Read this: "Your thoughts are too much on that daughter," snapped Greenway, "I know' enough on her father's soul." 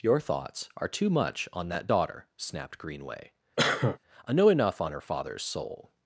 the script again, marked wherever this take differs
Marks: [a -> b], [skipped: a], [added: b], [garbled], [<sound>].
"Your thoughts are too much on that daughter," snapped Greenway, [cough] "I know' enough on her father's soul."